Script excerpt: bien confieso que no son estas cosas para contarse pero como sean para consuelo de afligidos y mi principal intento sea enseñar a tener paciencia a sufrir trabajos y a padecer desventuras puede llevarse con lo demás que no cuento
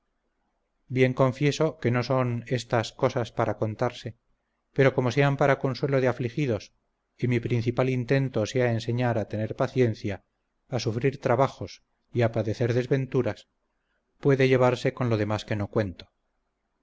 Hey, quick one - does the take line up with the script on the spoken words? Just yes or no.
yes